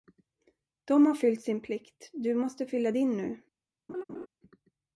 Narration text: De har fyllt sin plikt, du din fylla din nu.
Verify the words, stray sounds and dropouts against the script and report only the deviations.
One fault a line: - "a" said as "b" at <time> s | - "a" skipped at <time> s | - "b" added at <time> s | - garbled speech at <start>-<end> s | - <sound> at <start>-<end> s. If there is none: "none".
- "din" said as "måste" at 2.4 s
- laugh at 3.9-4.3 s